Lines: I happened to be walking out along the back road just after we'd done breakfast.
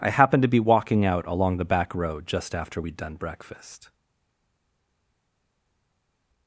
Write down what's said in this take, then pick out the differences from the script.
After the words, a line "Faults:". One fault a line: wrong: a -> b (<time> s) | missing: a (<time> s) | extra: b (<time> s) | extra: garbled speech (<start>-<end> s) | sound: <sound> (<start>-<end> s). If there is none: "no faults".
I happened to be walking out along the back road just after we'd done breakfast.
Faults:
no faults